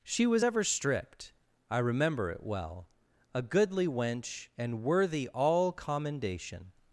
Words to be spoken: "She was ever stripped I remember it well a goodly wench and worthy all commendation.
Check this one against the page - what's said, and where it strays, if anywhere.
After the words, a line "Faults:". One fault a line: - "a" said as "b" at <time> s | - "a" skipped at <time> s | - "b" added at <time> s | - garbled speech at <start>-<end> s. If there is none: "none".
"She was ever stripped I remember it well a goodly wench and worthy all commendation.
Faults:
none